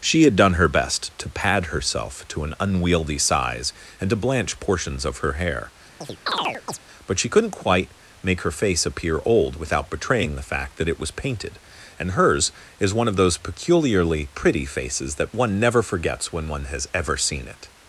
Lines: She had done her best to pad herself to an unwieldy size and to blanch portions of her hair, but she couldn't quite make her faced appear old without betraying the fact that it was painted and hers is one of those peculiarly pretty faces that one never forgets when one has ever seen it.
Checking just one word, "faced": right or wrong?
wrong